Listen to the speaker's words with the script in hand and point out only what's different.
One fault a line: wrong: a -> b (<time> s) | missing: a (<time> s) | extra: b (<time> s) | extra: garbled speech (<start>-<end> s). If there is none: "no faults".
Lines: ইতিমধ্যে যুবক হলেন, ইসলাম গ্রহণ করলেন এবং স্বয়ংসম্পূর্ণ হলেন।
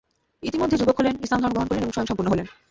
extra: ধর্ম (1.4 s)